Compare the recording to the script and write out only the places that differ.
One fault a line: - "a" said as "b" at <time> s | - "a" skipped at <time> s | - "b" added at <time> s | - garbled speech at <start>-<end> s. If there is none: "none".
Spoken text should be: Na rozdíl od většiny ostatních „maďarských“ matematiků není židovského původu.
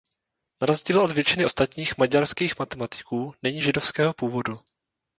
none